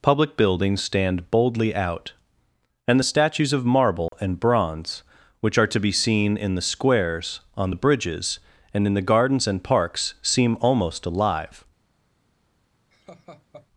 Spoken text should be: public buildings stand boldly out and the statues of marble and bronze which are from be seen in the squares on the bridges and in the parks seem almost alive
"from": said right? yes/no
no